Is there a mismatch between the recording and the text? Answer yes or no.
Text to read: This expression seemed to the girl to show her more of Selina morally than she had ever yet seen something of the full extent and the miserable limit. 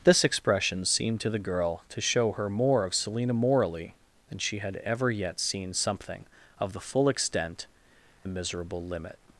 yes